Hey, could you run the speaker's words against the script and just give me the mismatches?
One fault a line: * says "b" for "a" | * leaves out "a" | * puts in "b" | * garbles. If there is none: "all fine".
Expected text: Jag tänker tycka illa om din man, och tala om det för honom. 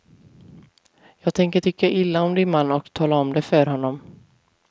all fine